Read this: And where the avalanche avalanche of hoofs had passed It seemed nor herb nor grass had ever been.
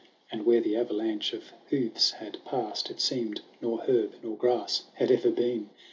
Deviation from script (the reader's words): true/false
true